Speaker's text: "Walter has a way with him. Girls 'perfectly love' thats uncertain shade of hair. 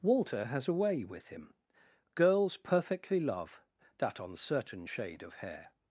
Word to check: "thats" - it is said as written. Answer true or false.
false